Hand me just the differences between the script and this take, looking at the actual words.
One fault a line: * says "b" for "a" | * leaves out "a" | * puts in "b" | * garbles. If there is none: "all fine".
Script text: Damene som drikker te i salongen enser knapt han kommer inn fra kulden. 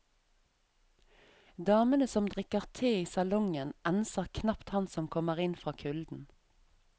* puts in "som"